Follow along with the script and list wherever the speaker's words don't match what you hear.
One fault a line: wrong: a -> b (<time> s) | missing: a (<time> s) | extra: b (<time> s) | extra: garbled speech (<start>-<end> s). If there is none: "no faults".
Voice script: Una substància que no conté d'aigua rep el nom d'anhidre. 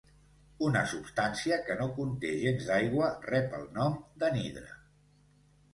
extra: gens (2.5 s)